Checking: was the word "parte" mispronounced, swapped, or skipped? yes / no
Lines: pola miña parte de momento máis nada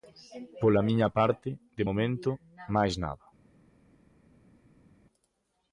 no